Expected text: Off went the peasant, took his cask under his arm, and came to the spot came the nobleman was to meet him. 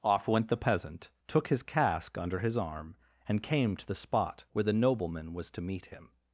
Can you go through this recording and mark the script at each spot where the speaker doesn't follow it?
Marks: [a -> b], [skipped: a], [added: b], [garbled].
Off went the peasant, took his cask under his arm, and came to the spot [came -> where] the nobleman was to meet him.